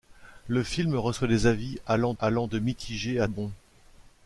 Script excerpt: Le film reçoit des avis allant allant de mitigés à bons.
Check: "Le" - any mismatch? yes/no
no